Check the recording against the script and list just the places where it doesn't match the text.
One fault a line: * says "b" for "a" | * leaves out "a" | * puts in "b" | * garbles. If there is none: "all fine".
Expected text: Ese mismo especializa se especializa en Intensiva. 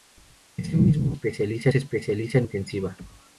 all fine